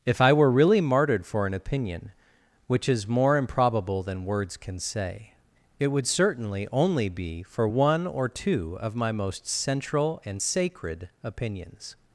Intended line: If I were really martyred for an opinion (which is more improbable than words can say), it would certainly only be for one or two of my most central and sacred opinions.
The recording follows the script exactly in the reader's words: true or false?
true